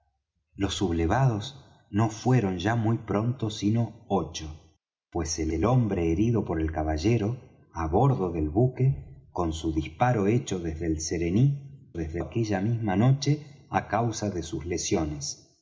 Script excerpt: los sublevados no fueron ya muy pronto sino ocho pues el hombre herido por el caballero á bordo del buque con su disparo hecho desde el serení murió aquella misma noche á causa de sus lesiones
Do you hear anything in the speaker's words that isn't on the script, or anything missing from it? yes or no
yes